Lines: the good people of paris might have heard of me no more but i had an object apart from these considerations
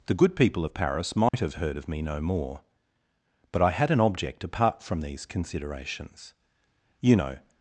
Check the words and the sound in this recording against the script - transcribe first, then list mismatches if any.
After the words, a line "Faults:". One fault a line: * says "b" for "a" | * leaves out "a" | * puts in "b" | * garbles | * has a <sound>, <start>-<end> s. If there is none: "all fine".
the good people of paris might have heard of me no more but i had an object apart from these considerations you know
Faults:
* has a dropout, 1.3-1.3 s
* puts in "you know"